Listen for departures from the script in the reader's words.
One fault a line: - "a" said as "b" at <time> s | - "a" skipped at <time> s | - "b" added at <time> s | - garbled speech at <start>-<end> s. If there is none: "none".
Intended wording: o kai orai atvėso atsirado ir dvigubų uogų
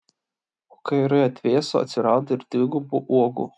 none